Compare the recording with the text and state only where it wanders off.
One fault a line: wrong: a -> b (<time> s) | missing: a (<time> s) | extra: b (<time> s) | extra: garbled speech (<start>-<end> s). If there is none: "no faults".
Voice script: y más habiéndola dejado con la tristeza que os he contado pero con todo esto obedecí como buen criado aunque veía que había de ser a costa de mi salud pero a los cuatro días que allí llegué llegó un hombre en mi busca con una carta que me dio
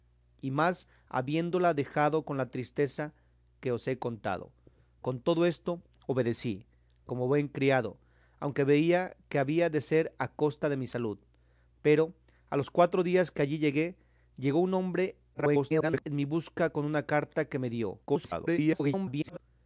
missing: pero (4.5 s)
extra: garbled speech (15.3-16.0 s)
extra: garbled speech (18.1-19.4 s)